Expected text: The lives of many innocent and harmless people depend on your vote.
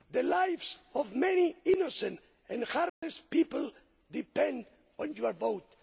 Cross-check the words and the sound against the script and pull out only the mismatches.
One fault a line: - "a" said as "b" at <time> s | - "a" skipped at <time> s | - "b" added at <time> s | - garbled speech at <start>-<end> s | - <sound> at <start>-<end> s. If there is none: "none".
- dropout at 2.9-3.0 s